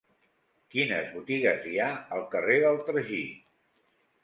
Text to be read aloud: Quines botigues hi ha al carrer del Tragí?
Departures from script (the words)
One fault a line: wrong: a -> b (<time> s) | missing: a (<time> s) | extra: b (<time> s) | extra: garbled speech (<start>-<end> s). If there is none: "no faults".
no faults